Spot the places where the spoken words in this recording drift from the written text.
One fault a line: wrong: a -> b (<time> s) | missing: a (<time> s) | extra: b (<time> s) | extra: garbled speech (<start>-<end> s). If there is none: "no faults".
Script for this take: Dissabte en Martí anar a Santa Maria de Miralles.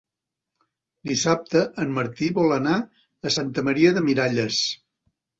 extra: vol (2.4 s)